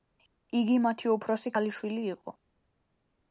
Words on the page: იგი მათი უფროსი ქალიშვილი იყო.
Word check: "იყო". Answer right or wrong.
right